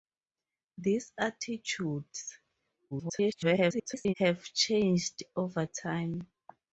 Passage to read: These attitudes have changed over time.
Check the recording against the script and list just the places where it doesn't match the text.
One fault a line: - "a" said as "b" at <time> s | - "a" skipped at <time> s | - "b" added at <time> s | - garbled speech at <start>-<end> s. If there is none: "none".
- garbled speech at 2.9-4.1 s